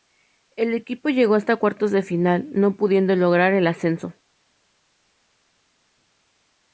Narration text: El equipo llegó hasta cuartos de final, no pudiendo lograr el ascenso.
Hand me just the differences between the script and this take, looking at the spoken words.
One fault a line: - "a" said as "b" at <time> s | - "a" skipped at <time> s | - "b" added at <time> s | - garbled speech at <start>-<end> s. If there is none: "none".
none